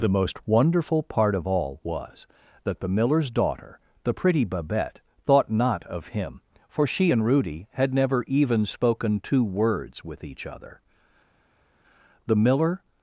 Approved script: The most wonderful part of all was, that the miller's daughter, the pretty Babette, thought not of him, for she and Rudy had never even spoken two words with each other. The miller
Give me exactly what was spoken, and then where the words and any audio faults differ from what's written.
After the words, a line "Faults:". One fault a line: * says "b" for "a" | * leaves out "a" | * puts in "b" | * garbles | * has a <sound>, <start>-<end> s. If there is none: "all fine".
The most wonderful part of all was, that the miller's daughter, the pretty Babette, thought not of him, for she and Rudy had never even spoken two words with each other. The miller
Faults:
all fine